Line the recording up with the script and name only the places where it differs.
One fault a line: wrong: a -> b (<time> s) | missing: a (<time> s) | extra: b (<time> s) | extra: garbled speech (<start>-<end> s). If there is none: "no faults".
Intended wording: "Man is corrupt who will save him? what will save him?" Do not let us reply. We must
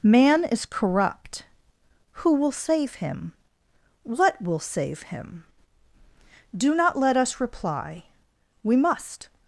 no faults